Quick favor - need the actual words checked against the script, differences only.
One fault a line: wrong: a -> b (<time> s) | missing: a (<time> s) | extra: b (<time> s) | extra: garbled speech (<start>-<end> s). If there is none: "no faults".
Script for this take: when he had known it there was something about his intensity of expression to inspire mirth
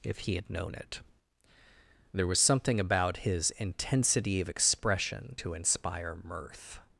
wrong: when -> if (0.0 s)